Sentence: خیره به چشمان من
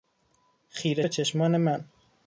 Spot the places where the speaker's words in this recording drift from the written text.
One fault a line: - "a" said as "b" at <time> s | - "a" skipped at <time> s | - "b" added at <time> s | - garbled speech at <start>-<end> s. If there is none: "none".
none